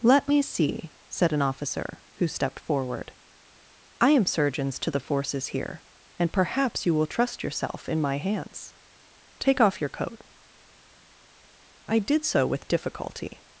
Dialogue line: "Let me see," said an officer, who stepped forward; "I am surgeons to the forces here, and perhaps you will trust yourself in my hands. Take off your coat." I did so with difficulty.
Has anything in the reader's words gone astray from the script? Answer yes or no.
no